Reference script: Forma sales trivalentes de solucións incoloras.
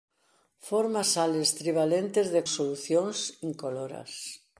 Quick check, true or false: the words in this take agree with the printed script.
true